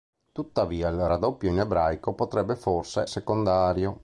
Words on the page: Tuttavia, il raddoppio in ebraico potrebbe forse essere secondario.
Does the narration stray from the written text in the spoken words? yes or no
yes